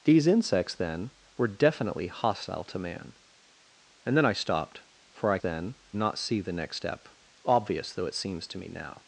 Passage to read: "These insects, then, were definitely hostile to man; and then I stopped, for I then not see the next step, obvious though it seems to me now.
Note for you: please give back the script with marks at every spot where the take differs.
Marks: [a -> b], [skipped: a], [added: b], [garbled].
"These insects, then, were definitely hostile to man; and then I stopped, for I then not see the next step, obvious though it seems to me now.